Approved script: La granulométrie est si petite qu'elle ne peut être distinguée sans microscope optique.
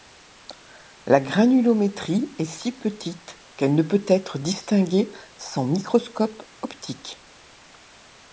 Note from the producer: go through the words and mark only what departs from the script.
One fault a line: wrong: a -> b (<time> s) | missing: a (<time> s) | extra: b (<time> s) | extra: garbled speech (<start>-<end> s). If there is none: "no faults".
no faults